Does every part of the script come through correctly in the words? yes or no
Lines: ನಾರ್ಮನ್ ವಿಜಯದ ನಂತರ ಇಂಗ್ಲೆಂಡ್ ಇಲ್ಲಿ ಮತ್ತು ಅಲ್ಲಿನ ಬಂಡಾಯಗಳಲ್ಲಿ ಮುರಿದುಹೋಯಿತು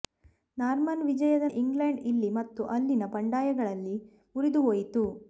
no